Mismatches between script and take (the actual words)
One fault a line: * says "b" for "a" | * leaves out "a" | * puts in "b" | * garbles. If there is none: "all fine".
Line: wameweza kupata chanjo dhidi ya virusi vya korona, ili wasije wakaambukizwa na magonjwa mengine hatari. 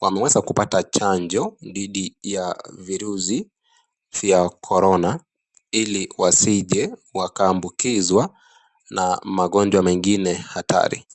all fine